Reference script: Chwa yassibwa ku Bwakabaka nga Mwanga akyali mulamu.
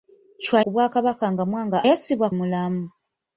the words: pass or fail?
fail